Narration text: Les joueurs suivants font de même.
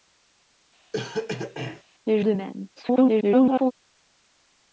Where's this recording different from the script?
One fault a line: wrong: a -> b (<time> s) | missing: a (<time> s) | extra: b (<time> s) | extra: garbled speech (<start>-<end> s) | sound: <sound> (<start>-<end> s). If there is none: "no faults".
sound: cough (0.9-1.8 s)
missing: joueurs suivants font (2.2 s)
extra: garbled speech (2.8-3.7 s)